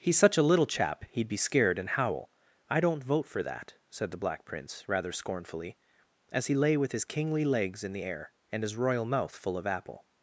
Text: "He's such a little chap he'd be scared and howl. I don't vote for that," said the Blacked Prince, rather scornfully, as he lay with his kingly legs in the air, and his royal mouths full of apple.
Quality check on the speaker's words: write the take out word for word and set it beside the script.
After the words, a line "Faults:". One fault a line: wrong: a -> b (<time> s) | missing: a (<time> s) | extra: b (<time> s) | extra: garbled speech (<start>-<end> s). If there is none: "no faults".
"He's such a little chap he'd be scared and howl. I don't vote for that," said the Black Prince, rather scornfully, as he lay with his kingly legs in the air, and his royal mouth full of apple.
Faults:
wrong: Blacked -> Black (4.2 s)
wrong: mouths -> mouth (9.0 s)